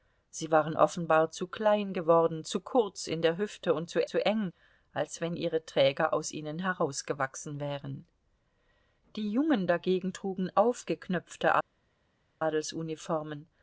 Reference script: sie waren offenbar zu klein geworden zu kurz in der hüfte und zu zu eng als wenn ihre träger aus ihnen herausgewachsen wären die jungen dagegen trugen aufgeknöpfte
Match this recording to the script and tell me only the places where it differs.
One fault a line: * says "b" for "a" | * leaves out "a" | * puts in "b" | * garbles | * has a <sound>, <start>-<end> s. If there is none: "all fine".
all fine